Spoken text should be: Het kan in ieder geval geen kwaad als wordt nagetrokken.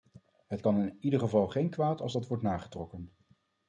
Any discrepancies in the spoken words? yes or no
yes